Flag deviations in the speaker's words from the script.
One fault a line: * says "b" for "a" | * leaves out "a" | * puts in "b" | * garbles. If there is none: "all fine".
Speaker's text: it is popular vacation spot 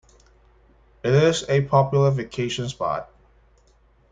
* puts in "a"